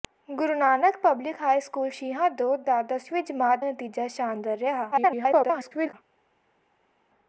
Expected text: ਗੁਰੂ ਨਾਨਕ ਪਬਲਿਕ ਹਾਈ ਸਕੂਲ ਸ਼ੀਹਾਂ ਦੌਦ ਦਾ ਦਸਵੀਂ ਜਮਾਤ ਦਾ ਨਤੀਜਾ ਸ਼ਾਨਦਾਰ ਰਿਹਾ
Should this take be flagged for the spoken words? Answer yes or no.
yes